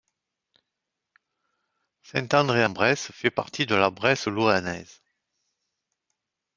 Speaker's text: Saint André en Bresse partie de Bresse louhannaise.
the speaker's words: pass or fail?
fail